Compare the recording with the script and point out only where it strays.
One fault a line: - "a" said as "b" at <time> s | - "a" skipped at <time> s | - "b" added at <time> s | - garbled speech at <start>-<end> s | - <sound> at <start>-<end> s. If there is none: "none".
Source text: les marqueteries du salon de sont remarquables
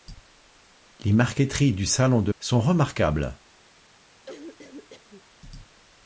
- cough at 4.3-5.2 s